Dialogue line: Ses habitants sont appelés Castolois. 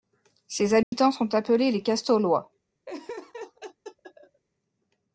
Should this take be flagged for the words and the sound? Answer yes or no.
yes